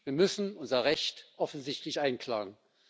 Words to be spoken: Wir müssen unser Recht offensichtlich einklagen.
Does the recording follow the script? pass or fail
pass